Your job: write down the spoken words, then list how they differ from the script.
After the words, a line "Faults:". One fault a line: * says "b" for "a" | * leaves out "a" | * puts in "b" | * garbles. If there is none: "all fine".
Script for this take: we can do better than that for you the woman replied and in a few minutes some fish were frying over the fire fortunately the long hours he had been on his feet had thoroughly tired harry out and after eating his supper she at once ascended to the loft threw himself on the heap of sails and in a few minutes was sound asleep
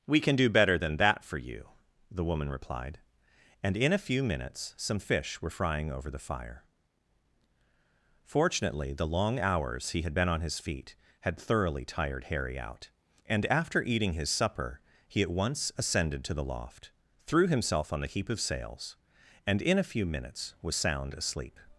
we can do better than that for you the woman replied and in a few minutes some fish were frying over the fire fortunately the long hours he had been on his feet had thoroughly tired harry out and after eating his supper he at once ascended to the loft threw himself on the heap of sails and in a few minutes was sound asleep
Faults:
* says "he" for "she"